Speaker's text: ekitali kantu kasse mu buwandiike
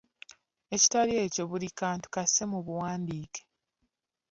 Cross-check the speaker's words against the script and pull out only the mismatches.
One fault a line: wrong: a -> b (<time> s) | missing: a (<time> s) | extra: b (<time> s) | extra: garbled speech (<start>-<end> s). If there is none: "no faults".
extra: ekyo buli (1.2 s)